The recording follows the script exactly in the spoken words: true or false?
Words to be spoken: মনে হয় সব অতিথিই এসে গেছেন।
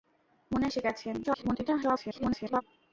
false